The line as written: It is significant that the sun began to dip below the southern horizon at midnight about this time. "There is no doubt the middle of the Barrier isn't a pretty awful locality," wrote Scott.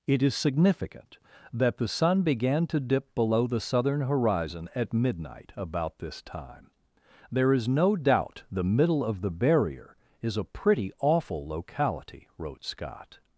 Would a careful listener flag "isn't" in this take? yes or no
yes